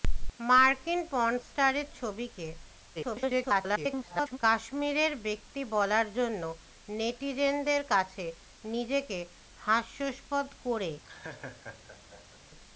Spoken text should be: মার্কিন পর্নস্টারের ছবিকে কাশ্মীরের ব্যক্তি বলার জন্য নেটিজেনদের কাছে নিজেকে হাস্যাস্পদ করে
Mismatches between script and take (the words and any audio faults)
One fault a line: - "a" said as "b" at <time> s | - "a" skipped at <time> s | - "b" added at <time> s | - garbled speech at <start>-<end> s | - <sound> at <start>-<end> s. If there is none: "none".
- garbled speech at 3.0-4.4 s
- laugh at 11.0-12.4 s